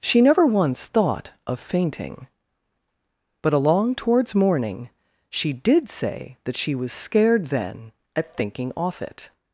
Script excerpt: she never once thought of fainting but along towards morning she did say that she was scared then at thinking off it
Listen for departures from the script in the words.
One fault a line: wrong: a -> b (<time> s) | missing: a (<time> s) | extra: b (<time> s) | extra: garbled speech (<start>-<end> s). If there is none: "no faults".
no faults